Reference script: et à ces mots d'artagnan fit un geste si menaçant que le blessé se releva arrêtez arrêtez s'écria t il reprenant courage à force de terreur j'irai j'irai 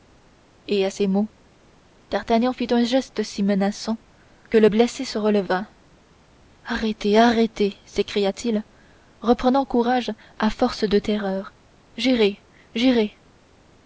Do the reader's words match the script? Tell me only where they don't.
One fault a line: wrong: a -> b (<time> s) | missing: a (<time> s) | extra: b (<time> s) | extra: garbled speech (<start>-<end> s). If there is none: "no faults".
no faults